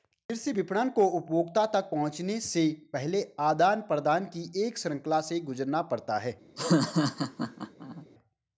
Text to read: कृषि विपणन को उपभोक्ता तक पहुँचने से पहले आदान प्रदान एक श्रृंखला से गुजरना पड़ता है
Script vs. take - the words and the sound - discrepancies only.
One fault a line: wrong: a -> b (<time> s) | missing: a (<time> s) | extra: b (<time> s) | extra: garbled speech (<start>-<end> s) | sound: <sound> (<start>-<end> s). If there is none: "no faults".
extra: की (4.3 s)
sound: laugh (6.6-8.1 s)